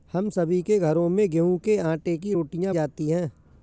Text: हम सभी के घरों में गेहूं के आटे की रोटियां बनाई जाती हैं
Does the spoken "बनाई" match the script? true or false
false